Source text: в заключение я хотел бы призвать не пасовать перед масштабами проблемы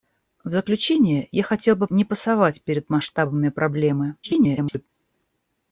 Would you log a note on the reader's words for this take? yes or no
yes